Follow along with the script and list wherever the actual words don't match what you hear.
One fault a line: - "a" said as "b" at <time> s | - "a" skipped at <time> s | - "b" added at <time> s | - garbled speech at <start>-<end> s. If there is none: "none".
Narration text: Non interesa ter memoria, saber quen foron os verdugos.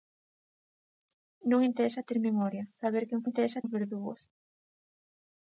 - "foron" said as "interesa" at 3.3 s